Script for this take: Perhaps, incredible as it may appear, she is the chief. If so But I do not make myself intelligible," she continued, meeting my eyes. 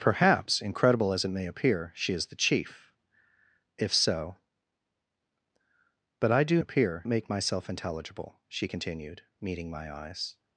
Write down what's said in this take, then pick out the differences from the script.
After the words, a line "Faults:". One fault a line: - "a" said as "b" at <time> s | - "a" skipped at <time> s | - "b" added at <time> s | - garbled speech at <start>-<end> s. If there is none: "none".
Perhaps, incredible as it may appear, she is the chief. If so But I do appear make myself intelligible," she continued, meeting my eyes.
Faults:
- "not" said as "appear" at 6.6 s